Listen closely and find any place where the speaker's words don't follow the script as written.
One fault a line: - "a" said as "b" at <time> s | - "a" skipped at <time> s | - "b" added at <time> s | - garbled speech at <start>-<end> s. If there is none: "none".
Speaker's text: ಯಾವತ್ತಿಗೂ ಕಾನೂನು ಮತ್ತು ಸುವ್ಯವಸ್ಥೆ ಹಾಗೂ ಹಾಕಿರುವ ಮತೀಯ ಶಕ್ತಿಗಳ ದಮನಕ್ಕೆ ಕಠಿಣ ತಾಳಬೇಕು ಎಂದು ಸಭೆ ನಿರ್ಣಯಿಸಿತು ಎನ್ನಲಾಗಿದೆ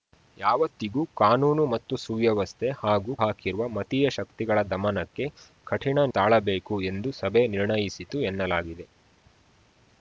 none